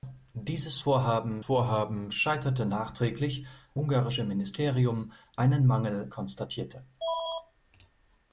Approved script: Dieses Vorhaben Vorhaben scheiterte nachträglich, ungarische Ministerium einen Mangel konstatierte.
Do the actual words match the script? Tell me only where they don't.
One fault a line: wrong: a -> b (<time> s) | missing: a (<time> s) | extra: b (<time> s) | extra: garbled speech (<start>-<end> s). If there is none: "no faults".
no faults